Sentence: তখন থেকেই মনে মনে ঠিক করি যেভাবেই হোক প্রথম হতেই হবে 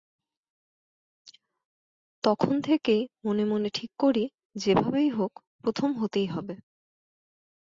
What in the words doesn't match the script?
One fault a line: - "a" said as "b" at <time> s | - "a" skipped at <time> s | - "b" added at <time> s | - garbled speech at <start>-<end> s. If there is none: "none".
none